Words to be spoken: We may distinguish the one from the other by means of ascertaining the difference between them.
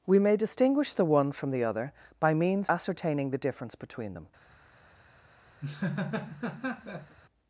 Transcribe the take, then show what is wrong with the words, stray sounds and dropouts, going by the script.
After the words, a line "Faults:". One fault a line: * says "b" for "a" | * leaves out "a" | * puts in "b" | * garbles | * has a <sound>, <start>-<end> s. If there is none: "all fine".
We may distinguish the one from the other by means ascertaining the difference between them.
Faults:
* leaves out "of"
* has a laugh, 5.6-7.2 s